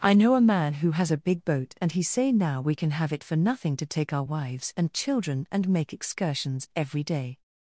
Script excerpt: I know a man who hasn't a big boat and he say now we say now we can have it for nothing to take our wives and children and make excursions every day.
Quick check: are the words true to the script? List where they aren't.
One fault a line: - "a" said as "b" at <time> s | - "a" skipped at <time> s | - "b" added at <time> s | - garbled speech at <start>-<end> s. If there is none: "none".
- "hasn't" said as "has" at 0.9 s
- "say now we" skipped at 2.7 s